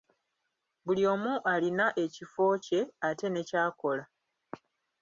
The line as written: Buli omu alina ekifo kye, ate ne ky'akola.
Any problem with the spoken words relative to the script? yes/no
no